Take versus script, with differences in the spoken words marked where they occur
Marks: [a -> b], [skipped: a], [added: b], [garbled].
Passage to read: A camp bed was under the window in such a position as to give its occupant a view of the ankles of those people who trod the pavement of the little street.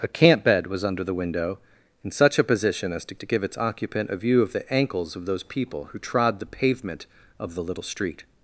A camp bed was under the window in such a position as to [added: to] give its occupant a view of the ankles of those people who trod the pavement of the little street.